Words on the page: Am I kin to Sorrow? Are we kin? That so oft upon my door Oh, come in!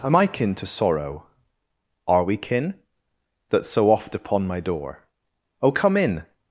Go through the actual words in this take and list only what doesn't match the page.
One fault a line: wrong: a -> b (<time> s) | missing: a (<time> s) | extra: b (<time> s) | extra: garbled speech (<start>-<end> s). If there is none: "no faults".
no faults